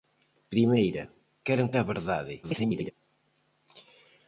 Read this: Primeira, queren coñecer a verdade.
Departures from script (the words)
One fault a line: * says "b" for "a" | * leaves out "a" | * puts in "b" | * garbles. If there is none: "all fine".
* leaves out "coñecer"
* garbles